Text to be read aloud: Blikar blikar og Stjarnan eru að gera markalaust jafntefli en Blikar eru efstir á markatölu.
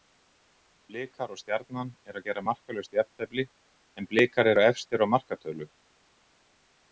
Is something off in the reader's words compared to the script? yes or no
yes